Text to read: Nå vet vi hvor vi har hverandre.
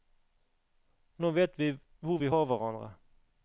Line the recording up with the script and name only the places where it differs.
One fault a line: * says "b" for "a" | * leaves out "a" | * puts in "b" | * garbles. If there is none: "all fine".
all fine